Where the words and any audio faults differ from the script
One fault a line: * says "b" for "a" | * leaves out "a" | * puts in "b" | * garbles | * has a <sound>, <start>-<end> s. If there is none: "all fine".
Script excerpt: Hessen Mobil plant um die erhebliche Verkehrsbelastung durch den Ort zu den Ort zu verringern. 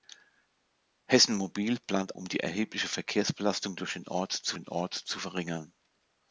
all fine